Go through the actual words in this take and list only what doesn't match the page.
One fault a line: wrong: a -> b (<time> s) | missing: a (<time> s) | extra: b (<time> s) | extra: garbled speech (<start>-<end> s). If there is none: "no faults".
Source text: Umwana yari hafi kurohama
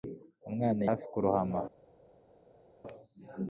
missing: yari (0.8 s)